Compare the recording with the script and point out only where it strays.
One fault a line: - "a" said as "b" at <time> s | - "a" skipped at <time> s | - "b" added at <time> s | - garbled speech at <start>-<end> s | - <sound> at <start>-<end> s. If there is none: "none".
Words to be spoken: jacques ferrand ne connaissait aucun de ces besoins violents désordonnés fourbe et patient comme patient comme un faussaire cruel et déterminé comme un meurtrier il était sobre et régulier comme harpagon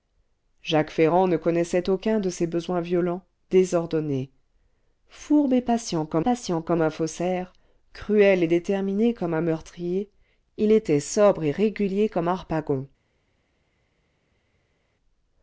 none